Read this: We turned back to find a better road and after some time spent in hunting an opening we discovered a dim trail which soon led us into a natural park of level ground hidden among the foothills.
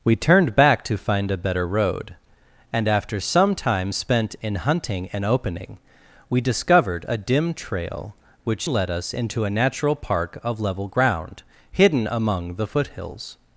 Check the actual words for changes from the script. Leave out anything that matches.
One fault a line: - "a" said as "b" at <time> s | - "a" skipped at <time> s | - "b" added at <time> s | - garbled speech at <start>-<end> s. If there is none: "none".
- "soon" skipped at 8.7 s